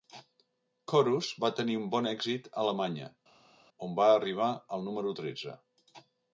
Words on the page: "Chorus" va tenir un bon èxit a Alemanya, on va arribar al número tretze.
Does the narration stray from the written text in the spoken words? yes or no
no